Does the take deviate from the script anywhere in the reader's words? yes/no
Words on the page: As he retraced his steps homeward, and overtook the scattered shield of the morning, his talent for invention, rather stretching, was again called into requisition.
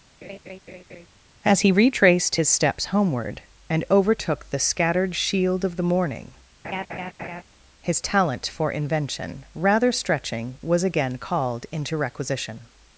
no